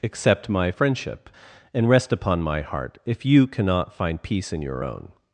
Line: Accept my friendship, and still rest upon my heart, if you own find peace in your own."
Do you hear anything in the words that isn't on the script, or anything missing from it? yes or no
yes